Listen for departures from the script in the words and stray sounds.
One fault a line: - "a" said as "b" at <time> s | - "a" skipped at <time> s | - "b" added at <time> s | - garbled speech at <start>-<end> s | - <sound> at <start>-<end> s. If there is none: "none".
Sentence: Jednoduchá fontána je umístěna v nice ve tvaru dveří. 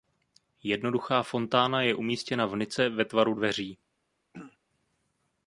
- throat clearing at 4.3-4.6 s